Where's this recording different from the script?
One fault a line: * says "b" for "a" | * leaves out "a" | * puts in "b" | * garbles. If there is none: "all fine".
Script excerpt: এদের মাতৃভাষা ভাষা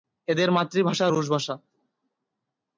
* puts in "রুশ"